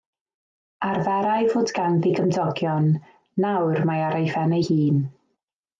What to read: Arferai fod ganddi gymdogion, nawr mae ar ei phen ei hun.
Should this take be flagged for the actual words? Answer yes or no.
no